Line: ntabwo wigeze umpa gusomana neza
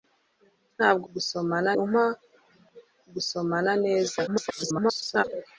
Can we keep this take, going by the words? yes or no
no